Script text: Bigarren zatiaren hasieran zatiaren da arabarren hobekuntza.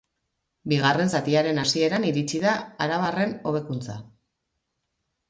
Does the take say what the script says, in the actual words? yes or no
no